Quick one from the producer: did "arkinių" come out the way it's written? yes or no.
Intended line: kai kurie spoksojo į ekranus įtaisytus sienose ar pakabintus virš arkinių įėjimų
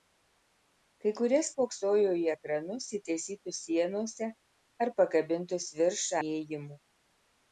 no